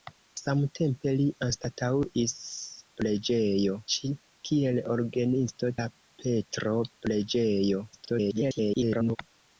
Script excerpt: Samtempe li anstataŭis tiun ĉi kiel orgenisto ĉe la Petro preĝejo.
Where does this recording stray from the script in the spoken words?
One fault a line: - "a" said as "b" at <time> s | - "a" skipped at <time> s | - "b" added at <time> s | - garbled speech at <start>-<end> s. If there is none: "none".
- "tiun" said as "preĝejo" at 3.0 s
- "ĉe" skipped at 5.7 s
- garbled speech at 7.9-9.2 s